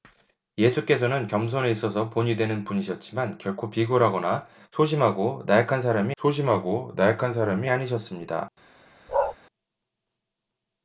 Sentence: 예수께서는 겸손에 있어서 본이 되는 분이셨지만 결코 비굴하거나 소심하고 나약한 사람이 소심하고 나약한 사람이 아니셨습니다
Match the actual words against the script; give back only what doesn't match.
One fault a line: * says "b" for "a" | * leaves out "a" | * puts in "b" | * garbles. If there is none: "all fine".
all fine